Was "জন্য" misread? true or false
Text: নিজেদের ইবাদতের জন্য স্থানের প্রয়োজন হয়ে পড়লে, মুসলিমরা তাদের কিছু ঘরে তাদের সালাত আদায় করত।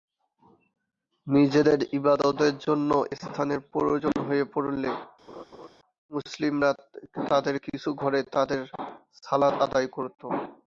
false